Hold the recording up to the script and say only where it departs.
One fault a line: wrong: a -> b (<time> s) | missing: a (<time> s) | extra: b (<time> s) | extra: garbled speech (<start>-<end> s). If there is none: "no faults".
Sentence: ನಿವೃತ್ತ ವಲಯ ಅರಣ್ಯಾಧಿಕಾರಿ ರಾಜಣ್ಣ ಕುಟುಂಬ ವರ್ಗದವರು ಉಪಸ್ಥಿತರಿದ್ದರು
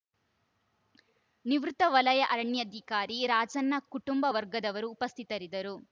no faults